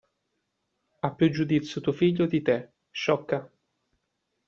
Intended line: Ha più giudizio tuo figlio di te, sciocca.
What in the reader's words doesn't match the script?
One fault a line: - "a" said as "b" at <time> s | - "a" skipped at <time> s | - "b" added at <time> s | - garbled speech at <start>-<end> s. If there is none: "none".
none